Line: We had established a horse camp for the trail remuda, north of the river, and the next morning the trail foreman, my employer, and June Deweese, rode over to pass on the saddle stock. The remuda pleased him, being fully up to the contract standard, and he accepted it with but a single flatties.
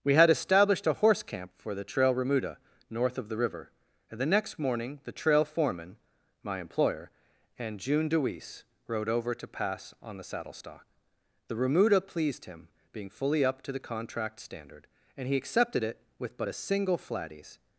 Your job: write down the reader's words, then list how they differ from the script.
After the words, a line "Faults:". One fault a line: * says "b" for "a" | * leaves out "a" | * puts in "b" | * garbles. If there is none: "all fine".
We had established a horse camp for the trail remuda, north of the river, and the next morning the trail foreman, my employer, and June Deweese, rode over to pass on the saddle stock. The remuda pleased him, being fully up to the contract standard, and he accepted it with but a single flatties.
Faults:
all fine